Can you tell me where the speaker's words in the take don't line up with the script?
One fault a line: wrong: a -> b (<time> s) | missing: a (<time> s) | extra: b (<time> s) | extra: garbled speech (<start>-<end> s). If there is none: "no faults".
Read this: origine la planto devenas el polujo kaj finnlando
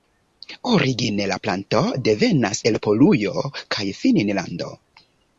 no faults